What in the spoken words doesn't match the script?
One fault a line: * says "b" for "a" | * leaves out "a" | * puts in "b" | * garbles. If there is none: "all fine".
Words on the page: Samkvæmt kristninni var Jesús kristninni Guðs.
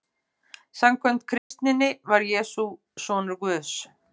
* says "sonur" for "kristninni"